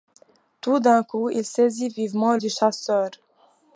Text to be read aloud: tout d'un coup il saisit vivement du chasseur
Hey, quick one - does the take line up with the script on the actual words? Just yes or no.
yes